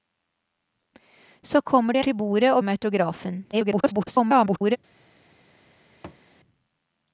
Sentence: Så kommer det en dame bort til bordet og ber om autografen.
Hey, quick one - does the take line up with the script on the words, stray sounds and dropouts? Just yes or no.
no